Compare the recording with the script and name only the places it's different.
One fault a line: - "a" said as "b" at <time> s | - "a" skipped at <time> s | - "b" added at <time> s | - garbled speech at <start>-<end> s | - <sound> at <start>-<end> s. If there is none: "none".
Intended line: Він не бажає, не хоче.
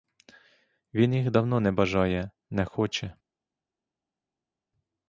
- "їх давно" added at 1.1 s